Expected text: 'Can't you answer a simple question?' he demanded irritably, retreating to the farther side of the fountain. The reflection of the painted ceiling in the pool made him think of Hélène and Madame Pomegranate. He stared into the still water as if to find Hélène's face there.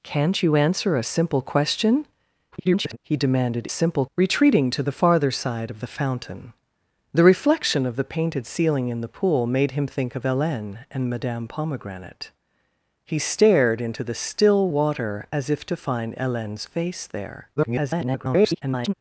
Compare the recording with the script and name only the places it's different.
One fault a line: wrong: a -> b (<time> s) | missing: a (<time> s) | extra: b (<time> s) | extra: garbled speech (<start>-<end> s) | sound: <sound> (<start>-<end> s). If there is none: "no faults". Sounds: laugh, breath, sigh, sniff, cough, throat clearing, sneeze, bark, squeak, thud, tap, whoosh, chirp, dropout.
extra: garbled speech (2.5-3.0 s)
wrong: irritably -> simple (3.7 s)
extra: garbled speech (17.6-18.9 s)